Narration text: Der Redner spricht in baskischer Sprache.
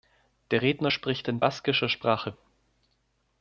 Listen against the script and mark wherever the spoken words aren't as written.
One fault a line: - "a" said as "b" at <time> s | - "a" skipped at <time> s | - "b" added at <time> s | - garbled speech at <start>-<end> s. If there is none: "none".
none